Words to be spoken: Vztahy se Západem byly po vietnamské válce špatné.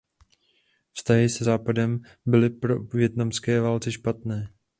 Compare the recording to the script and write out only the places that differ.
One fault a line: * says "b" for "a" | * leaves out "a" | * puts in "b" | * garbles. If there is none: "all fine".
all fine